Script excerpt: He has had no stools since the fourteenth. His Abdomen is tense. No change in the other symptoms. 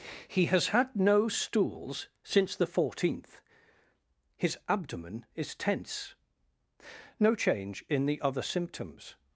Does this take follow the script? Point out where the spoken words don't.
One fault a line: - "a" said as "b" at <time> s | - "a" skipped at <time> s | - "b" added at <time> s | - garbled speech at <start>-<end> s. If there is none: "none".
none